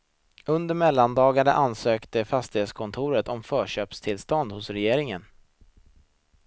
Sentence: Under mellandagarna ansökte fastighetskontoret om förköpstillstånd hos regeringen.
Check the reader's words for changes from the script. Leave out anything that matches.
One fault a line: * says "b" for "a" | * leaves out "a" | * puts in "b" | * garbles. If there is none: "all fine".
all fine